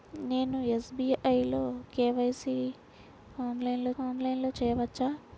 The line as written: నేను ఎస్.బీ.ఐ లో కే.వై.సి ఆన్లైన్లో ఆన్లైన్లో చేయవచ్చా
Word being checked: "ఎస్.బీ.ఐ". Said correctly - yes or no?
yes